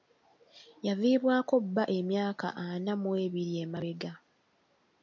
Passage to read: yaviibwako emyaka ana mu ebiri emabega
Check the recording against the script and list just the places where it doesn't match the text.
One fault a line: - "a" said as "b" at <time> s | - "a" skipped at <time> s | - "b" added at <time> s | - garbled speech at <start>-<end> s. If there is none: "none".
- "bba" added at 1.6 s